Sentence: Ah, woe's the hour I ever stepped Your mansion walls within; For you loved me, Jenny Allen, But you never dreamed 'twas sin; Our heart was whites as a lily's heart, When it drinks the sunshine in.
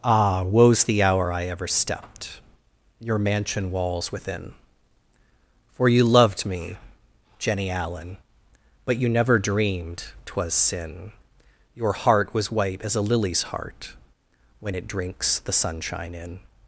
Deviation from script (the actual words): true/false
true